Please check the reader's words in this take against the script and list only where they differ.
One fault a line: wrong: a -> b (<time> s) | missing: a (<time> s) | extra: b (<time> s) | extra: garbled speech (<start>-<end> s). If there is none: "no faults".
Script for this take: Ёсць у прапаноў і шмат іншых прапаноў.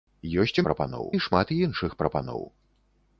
no faults